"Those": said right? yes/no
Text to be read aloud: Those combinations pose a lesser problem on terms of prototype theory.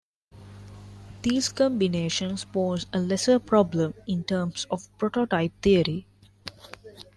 no